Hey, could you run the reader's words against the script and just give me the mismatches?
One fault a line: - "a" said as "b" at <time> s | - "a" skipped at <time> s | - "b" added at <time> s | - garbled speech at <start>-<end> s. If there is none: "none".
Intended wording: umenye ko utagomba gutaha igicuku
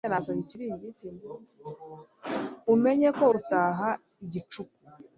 - "utagomba" skipped at 3.2 s